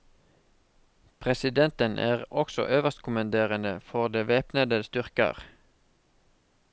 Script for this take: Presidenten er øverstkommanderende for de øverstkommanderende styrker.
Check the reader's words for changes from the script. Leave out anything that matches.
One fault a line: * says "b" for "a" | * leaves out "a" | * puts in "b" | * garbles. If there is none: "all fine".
* puts in "også"
* says "væpnede" for "øverstkommanderende"